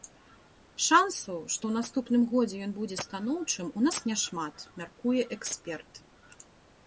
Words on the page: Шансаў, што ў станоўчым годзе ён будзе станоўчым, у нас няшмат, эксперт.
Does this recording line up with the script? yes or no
no